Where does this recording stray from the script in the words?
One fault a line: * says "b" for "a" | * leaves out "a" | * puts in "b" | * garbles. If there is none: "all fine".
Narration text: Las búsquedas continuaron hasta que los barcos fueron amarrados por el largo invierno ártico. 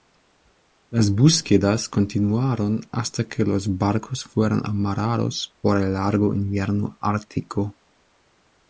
all fine